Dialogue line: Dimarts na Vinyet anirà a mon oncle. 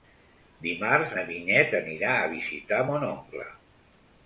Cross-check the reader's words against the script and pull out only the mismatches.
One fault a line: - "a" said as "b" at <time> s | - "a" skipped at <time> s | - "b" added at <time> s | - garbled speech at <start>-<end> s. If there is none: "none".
- "visitar" added at 2.4 s